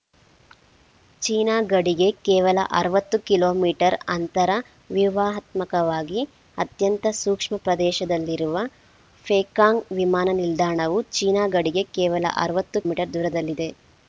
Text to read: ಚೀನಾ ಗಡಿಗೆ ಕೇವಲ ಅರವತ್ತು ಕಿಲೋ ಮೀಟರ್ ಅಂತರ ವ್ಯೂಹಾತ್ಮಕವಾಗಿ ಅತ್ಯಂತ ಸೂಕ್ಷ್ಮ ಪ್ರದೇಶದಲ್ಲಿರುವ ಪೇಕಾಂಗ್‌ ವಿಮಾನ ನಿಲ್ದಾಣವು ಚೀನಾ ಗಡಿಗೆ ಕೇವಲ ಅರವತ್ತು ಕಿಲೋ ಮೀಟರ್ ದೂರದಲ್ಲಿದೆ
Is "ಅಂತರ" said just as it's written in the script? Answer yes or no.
yes